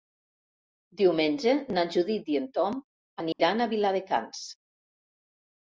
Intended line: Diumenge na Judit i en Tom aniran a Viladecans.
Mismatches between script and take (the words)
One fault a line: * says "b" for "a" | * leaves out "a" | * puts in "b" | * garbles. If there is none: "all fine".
all fine